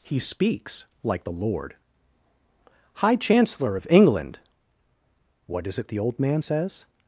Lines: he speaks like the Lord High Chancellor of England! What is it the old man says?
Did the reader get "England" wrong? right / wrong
right